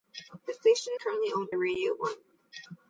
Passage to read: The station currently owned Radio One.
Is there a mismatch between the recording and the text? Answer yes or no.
no